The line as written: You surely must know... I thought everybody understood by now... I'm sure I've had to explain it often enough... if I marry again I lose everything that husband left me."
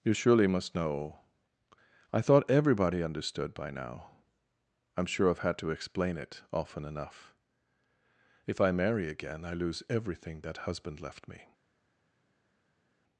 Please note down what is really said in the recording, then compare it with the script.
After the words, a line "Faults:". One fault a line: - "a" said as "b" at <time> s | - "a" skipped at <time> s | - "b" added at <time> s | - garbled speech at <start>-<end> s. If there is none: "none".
You surely must know... I thought everybody understood by now... I'm sure I've had to explain it often enough... if I marry again I lose everything that husband left me."
Faults:
none